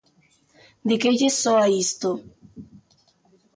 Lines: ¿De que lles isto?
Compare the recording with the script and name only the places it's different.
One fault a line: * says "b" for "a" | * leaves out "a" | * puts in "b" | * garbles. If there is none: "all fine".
* puts in "soa"